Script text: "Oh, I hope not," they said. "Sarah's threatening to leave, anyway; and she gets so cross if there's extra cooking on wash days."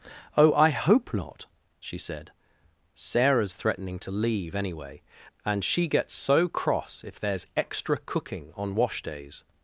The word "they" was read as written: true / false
false